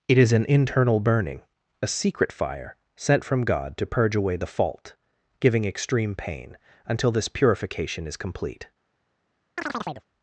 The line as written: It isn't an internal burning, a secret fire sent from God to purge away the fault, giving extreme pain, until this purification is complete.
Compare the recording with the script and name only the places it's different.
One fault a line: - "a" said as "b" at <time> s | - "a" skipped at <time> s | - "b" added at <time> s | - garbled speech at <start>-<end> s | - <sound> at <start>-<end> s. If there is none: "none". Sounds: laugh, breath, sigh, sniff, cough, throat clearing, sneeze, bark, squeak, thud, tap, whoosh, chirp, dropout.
- "isn't" said as "is" at 0.2 s
- chirp at 9.6-10.1 s